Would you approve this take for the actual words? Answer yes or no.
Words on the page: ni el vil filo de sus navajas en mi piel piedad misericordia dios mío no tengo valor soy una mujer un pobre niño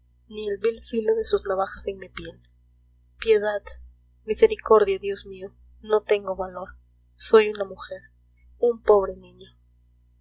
yes